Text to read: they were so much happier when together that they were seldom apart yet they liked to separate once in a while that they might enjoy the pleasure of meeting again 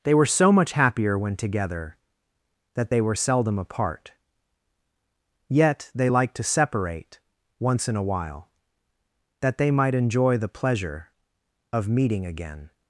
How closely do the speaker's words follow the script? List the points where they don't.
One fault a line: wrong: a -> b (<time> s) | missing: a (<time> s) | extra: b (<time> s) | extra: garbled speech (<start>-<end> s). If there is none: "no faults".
no faults